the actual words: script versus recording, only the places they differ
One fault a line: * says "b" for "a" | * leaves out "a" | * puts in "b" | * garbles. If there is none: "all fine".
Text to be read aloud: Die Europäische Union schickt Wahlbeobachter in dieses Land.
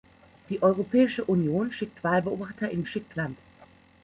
* says "schickt" for "dieses"